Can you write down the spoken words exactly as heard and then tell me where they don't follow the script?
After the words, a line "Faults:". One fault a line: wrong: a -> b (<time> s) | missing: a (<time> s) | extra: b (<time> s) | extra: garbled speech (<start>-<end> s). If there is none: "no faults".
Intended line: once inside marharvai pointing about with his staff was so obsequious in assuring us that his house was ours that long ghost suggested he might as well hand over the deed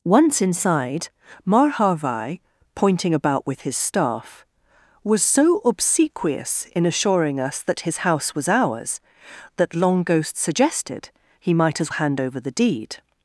once inside marharvai pointing about with his staff was so obsequious in assuring us that his house was ours that long ghost suggested he might as hand over the deed
Faults:
missing: well (11.9 s)